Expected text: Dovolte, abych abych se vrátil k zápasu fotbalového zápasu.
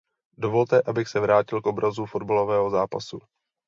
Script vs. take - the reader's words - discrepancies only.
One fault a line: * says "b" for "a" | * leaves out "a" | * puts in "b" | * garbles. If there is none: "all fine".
* leaves out "abych"
* says "obrazu" for "zápasu"